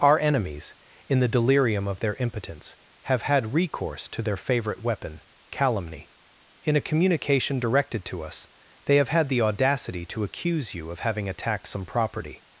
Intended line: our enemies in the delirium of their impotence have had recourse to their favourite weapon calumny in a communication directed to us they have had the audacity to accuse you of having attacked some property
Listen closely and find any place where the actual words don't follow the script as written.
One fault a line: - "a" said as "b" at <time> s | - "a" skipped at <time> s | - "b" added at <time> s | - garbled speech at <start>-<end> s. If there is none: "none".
none